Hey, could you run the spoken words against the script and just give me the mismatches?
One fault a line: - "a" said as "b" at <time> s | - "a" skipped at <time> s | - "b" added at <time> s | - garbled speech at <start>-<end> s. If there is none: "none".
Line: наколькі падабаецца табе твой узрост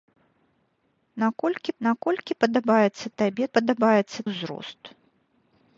- "наколькі" added at 1.9 s
- "твой" said as "падабаецца" at 3.6 s